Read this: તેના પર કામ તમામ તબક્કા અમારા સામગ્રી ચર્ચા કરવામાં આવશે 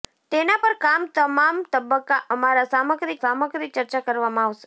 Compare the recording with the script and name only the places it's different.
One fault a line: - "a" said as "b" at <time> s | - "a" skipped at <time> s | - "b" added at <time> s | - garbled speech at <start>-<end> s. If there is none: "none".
- "સામગ્રી" added at 3.2 s